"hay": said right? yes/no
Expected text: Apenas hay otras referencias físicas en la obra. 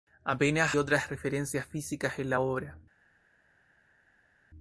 no